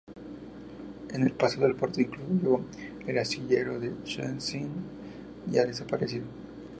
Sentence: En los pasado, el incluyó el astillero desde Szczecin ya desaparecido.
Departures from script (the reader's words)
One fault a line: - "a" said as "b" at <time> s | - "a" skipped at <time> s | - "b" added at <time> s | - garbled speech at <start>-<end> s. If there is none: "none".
- "los" said as "el" at 1.2 s
- "puerto" added at 1.8 s
- "desde" said as "de" at 3.8 s